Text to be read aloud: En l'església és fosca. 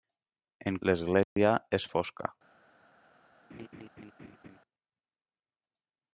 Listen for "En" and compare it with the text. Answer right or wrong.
right